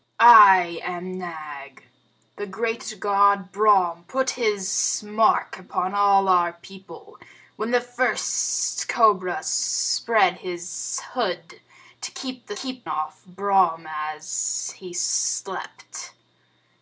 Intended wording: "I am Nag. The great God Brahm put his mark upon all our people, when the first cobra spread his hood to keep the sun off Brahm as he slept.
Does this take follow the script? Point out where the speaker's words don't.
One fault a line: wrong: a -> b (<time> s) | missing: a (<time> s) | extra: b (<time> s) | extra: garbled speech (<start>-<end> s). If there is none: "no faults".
wrong: sun -> keep (12.5 s)